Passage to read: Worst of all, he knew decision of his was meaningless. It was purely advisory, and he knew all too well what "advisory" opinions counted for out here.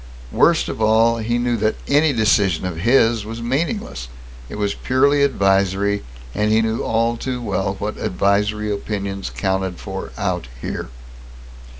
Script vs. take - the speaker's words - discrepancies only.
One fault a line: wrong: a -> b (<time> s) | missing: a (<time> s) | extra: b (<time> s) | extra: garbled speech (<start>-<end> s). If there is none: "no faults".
extra: that any (1.6 s)